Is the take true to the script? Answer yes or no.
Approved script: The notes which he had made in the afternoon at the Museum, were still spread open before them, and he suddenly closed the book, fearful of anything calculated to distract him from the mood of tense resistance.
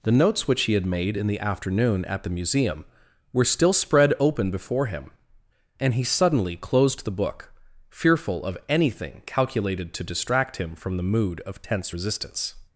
no